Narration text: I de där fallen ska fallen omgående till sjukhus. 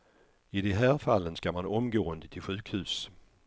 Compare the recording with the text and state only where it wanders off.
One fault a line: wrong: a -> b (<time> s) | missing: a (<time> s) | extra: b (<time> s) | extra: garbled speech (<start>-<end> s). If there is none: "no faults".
wrong: där -> här (0.7 s)
wrong: fallen -> man (1.5 s)